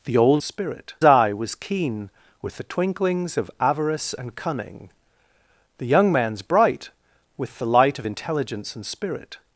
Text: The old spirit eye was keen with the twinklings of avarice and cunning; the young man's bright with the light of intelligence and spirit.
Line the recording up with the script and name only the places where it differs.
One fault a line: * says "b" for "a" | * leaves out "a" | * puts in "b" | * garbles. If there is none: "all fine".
all fine